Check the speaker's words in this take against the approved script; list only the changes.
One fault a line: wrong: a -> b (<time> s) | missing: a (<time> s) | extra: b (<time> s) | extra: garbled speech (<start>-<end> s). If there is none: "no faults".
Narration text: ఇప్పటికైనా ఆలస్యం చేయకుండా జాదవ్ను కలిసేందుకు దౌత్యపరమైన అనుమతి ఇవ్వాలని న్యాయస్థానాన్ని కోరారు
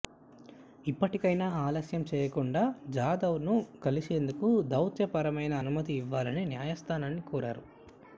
no faults